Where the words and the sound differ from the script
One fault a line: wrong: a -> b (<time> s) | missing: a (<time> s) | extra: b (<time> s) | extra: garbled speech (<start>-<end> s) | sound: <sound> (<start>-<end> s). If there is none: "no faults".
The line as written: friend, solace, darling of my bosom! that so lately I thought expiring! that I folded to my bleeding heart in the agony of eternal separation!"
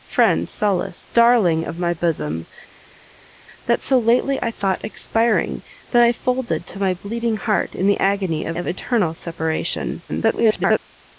extra: of (8.5 s)
extra: garbled speech (10.1-10.8 s)